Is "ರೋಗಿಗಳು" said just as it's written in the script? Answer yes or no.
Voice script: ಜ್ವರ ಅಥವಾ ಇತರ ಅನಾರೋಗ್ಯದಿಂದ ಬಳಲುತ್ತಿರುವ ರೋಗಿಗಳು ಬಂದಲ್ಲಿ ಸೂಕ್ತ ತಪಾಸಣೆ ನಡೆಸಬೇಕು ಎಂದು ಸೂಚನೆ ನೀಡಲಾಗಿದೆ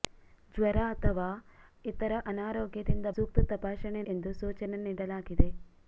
no